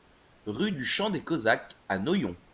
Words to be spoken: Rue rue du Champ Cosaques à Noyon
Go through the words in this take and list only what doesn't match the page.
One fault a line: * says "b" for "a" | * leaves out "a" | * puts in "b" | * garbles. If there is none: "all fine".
* leaves out "rue"
* puts in "des"